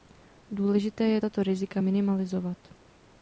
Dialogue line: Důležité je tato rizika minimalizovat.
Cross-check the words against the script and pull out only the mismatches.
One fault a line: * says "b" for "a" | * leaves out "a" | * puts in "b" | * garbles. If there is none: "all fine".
all fine